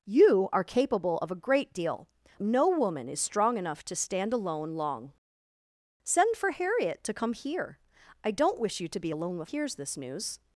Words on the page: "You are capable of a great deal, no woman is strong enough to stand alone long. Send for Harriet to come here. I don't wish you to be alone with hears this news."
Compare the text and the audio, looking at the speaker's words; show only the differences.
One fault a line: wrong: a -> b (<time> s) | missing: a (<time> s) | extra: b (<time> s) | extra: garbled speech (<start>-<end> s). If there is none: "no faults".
no faults